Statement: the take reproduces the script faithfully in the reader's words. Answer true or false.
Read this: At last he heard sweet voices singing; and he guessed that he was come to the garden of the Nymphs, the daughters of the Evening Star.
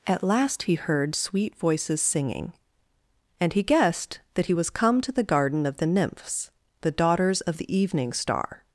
true